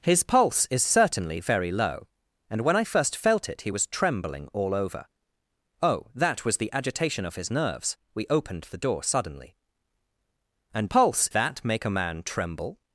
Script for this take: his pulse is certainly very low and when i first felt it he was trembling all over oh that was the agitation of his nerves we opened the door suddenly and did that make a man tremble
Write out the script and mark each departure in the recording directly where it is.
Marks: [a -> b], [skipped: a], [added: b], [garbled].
his pulse is certainly very low and when i first felt it he was trembling all over oh that was the agitation of his nerves we opened the door suddenly and [did -> pulse] that make a man tremble